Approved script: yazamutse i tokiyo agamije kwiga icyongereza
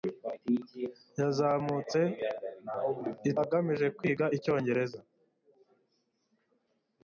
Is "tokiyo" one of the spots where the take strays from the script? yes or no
yes